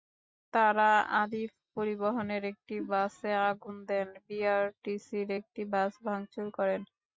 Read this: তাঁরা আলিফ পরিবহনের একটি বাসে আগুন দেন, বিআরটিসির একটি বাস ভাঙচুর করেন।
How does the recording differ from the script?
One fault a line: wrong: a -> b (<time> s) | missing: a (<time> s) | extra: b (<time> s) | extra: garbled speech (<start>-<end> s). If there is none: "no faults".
no faults